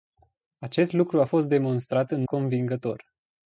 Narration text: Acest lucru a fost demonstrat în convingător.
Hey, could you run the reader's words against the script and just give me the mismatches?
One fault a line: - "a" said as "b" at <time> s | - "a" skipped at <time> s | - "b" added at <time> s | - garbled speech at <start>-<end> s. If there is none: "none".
none